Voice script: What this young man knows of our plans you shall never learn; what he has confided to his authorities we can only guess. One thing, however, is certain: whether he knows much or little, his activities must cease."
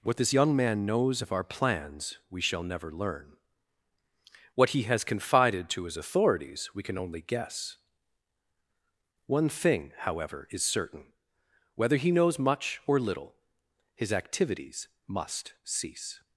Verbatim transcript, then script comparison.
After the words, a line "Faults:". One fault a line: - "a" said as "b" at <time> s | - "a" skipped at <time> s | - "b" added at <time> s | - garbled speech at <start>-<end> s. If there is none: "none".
What this young man knows of our plans we shall never learn; what he has confided to his authorities we can only guess. One thing, however, is certain: whether he knows much or little, his activities must cease."
Faults:
- "you" said as "we" at 2.3 s